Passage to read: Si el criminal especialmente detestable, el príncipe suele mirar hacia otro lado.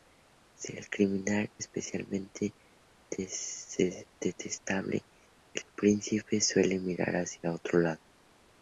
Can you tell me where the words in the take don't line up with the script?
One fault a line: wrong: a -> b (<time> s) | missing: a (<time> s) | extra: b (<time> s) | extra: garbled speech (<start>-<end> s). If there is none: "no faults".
no faults